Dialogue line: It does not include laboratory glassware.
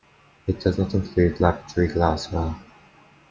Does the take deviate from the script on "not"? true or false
false